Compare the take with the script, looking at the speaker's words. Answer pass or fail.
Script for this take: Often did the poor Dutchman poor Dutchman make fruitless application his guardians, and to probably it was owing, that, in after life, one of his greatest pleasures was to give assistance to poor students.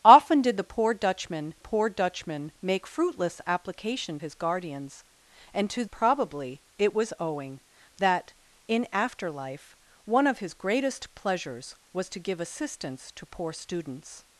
pass